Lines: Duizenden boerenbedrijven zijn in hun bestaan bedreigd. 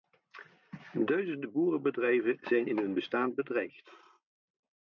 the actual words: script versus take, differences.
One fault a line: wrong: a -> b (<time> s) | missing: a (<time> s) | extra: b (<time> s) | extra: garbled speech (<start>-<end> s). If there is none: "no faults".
no faults